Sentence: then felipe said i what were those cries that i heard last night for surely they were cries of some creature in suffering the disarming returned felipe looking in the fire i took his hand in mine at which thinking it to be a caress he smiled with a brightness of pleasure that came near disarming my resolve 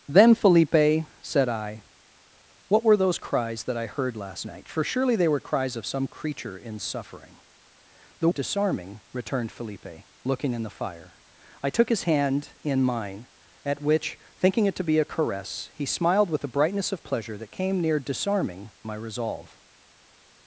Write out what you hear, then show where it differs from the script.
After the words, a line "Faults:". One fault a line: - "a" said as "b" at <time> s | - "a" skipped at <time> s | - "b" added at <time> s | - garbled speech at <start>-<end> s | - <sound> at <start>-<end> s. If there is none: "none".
then felipe said i what were those cries that i heard last night for surely they were cries of some creature in suffering the disarming returned felipe looking in the fire i took his hand in mine at which thinking it to be a caress he smiled with a brightness of pleasure that came near disarming my resolve
Faults:
none